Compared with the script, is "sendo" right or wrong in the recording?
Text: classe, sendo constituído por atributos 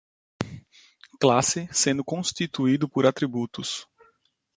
right